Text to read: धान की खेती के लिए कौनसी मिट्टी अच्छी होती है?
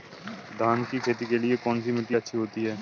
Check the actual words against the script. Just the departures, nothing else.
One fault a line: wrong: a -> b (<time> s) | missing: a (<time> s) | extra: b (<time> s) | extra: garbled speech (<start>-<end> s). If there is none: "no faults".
no faults